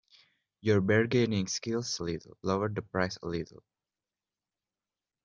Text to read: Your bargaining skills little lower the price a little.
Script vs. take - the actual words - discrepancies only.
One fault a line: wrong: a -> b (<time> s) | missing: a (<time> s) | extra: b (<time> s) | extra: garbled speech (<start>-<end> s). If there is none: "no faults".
no faults